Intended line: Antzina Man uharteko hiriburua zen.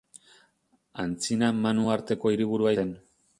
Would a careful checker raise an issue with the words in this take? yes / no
no